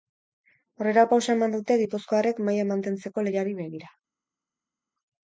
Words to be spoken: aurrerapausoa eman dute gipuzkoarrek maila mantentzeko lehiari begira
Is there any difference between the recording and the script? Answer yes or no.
no